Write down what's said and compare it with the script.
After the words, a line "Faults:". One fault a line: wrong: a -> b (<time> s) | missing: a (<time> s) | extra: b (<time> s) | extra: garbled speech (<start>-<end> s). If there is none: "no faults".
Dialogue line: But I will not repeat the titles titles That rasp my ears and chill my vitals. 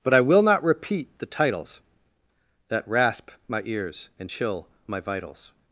But I will not repeat the titles That rasp my ears and chill my vitals.
Faults:
missing: titles (1.8 s)